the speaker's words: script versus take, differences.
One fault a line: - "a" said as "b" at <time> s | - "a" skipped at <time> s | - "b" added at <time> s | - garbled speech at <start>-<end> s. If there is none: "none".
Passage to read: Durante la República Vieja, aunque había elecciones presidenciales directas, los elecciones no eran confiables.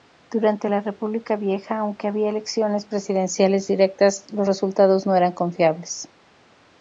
- "elecciones" said as "resultados" at 4.5 s